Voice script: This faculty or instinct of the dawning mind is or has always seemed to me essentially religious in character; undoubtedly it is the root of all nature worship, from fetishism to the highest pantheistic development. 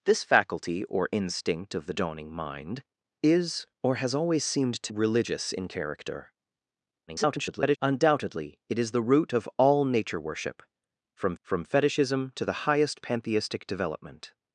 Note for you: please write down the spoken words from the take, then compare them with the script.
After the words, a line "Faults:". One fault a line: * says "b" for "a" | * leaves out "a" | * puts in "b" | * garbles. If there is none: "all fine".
This faculty or instinct of the dawning mind is or has always seemed to religious in character; [garbled] undoubtedly it is the root of all nature worship, from from fetishism to the highest pantheistic development.
Faults:
* leaves out "me essentially"
* garbles
* puts in "from"